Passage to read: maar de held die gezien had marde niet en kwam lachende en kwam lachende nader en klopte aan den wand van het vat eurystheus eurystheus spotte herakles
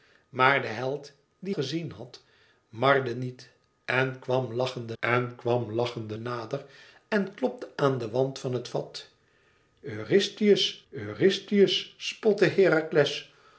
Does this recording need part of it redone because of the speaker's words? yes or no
no